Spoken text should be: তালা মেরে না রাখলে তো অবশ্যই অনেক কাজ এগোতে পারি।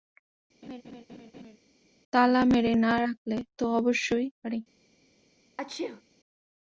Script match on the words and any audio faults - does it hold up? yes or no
no